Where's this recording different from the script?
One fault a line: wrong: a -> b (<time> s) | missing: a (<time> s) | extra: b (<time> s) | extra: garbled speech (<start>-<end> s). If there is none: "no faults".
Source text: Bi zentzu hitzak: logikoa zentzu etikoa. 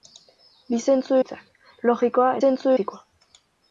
no faults